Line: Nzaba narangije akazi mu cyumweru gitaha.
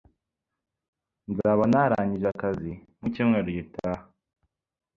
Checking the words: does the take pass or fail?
pass